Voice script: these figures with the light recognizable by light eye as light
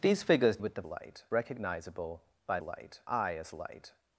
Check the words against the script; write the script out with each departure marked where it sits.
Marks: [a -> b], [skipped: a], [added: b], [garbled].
these figures with the light recognizable by light eye as light